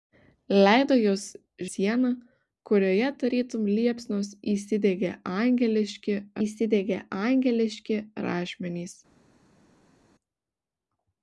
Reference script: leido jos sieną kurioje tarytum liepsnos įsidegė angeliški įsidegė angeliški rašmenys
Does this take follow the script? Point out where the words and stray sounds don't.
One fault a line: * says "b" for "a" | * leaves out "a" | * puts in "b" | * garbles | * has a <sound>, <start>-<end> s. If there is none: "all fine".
all fine